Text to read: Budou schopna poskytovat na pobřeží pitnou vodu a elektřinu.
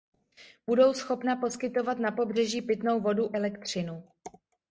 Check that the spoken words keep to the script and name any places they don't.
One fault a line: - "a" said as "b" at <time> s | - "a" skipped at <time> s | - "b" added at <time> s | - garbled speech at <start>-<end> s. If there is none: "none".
- "a" skipped at 3.4 s